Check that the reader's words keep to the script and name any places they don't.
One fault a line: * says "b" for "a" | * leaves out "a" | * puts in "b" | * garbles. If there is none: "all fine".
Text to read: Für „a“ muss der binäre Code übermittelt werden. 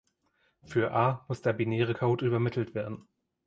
all fine